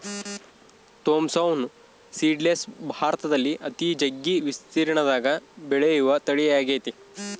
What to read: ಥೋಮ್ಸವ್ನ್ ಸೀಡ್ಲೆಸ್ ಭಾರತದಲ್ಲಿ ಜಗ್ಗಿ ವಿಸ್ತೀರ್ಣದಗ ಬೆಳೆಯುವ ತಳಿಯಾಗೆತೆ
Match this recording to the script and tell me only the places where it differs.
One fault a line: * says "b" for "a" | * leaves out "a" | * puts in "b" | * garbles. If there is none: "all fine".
* puts in "ಅತಿ"